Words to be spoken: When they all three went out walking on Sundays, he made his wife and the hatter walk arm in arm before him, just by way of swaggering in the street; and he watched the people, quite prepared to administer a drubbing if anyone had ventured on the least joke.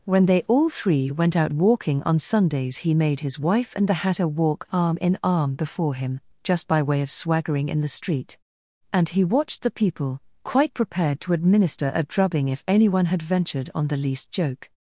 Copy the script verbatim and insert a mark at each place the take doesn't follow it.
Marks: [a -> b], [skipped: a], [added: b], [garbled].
When they all three went out walking on Sundays, he made his wife and the hatter walk arm in arm before him, just by way of swaggering in the street; and he watched the people, quite prepared to administer a drubbing if anyone had ventured on the least joke.